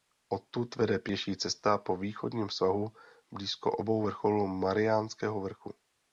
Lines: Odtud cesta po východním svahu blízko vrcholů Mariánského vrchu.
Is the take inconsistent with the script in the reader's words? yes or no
yes